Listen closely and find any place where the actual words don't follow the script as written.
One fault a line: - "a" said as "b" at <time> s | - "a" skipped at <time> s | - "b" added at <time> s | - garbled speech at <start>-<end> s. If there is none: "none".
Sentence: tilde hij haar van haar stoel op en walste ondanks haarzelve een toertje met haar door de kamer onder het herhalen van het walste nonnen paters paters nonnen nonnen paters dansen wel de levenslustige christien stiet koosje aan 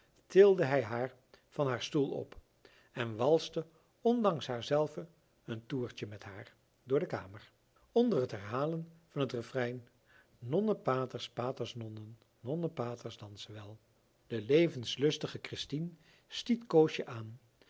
- "walste" said as "refrein" at 9.3 s